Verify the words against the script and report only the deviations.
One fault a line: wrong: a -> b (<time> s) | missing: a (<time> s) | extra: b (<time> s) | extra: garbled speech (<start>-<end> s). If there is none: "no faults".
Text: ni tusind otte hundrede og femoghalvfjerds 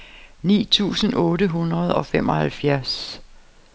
no faults